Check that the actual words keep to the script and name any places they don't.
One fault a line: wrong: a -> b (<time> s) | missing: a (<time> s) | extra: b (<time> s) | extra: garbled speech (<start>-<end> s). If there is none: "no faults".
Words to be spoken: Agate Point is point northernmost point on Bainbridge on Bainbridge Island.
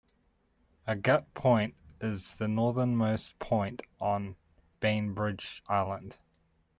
wrong: point -> the (2.4 s)
missing: on Bainbridge (5.6 s)